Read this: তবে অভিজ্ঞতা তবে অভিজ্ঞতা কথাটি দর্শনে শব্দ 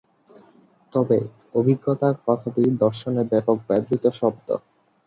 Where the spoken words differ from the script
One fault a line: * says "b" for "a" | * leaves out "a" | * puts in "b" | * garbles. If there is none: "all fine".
* says "কথাটি দর্শনে ব্যাপক ব্যবহৃত" for "তবে অভিজ্ঞতা কথাটি দর্শনে"